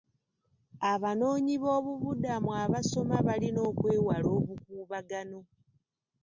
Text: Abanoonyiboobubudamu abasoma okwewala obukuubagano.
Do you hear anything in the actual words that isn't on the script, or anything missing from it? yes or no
yes